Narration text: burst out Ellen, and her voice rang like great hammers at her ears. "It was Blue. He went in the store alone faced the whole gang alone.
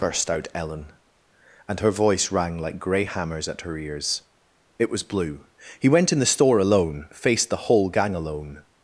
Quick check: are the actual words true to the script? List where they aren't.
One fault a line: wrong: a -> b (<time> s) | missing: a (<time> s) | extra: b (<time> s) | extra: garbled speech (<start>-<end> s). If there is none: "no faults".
wrong: great -> grey (2.8 s)